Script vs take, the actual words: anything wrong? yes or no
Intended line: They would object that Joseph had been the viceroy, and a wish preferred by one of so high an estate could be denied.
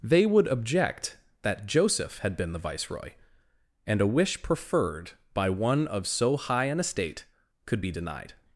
no